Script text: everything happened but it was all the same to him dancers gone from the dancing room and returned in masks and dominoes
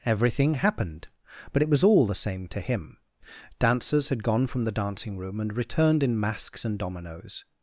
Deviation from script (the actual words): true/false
true